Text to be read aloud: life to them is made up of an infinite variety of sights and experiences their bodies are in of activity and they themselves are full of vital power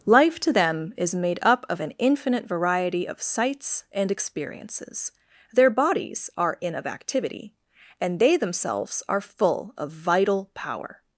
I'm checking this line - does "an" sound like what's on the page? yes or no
yes